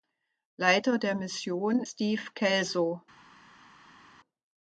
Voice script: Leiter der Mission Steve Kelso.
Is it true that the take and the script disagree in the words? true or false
false